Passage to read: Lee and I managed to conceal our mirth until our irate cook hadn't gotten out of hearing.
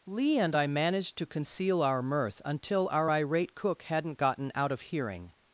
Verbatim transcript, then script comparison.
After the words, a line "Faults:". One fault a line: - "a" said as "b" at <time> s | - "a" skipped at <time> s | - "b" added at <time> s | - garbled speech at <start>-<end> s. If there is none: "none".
Lee and I managed to conceal our mirth until our irate cook hadn't gotten out of hearing.
Faults:
none